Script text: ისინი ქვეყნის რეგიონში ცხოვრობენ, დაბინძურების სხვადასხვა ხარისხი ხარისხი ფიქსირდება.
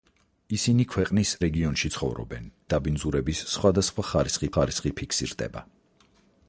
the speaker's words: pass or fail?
pass